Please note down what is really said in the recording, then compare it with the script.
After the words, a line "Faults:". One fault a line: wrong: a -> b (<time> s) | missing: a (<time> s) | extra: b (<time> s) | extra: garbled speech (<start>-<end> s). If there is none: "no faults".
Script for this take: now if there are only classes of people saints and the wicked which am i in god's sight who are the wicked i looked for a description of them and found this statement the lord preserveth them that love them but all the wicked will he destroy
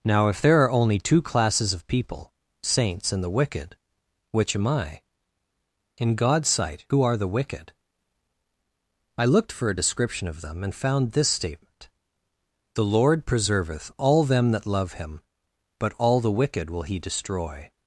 now if there are only two classes of people saints and the wicked which am i in god's sight who are the wicked i looked for a description of them and found this statement the lord preserveth all them that love him but all the wicked will he destroy
Faults:
extra: two (1.0 s)
extra: all (14.0 s)
wrong: them -> him (14.9 s)